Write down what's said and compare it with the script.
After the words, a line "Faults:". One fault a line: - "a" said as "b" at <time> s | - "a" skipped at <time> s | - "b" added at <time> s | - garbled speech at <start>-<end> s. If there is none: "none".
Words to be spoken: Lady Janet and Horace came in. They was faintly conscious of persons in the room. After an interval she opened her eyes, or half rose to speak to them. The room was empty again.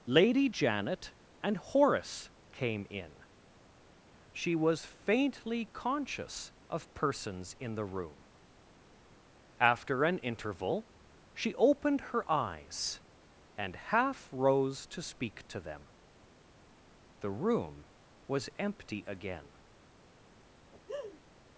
Lady Janet and Horace came in. She was faintly conscious of persons in the room. After an interval she opened her eyes, and half rose to speak to them. The room was empty again.
Faults:
- "They" said as "She" at 4.3 s
- "or" said as "and" at 13.6 s